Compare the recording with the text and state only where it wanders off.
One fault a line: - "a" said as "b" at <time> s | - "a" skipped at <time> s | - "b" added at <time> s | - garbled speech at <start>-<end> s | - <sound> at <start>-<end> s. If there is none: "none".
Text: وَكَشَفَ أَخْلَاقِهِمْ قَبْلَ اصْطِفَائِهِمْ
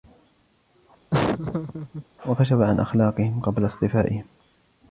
- laugh at 1.1-2.1 s
- "عَنْ" added at 2.6 s